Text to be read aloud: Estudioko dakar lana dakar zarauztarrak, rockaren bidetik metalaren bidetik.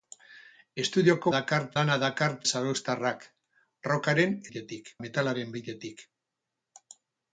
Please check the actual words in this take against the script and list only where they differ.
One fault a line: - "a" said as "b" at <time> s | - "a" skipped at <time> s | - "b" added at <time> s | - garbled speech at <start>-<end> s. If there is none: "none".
none